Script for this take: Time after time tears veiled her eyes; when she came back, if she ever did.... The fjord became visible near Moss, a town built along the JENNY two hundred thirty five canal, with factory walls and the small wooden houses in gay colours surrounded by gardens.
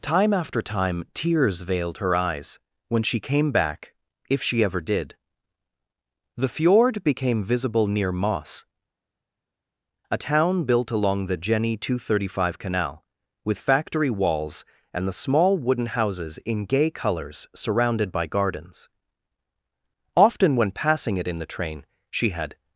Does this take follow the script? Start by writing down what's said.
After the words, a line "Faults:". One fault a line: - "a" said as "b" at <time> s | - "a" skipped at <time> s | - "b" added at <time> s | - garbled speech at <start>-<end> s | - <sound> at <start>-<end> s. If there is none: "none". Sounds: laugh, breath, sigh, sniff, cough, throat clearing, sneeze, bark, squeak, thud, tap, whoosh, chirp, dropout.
Time after time tears veiled her eyes; when she came back, if she ever did.... The fjord became visible near Moss, a town built along the JENNY two hundred thirty five canal, with factory walls and the small wooden houses in gay colours surrounded by gardens. Often when passing it in the train she had
Faults:
- "Often when passing it in the train she had" added at 20.1 s